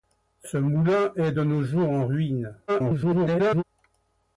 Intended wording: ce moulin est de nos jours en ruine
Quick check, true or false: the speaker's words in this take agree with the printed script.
false